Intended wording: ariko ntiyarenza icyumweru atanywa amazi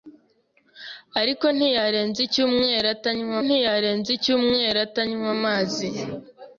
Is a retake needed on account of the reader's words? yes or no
yes